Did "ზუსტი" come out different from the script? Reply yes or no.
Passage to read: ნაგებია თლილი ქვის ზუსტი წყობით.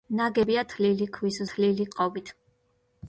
yes